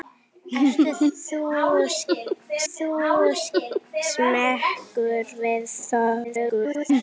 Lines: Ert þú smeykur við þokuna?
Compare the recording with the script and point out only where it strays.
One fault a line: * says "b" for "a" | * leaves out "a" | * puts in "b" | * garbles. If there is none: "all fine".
* puts in "þú"
* garbles